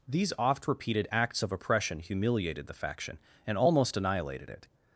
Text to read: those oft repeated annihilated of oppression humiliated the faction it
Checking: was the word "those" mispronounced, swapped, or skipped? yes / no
yes